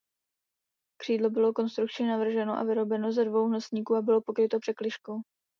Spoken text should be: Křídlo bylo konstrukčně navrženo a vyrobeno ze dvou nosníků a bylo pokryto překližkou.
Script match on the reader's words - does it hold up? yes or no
yes